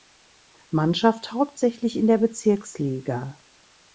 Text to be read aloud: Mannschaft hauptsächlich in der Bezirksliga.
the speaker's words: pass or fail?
pass